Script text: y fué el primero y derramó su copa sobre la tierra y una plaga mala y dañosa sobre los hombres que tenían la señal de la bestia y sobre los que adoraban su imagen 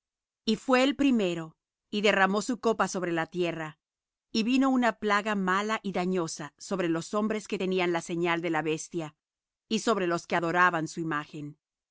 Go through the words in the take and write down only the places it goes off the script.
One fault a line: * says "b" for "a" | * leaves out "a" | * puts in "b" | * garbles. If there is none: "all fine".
* puts in "vino"